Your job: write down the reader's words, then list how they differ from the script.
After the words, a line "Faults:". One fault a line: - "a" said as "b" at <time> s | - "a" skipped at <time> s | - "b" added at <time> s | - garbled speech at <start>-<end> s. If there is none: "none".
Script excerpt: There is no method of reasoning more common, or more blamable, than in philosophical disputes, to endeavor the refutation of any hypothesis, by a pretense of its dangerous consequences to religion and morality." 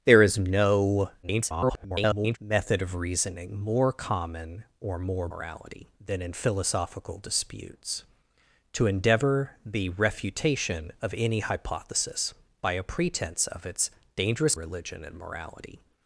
There is no [garbled] method of reasoning more common, or more morality, than in philosophical disputes, to endeavor the refutation of any hypothesis, by a pretense of its dangerous religion and morality."
Faults:
- garbled speech at 1.2-2.4 s
- "blamable" said as "morality" at 5.3 s
- "consequences to" skipped at 14.5 s